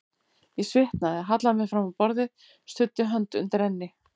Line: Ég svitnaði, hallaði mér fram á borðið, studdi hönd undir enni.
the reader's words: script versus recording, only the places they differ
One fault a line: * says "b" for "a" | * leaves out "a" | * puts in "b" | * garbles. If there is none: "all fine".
all fine